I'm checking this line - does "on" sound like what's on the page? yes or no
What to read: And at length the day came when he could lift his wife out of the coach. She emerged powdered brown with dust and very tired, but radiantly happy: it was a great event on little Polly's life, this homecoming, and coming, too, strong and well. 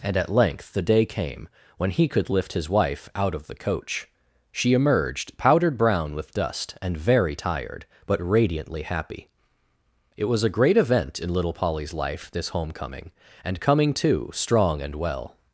no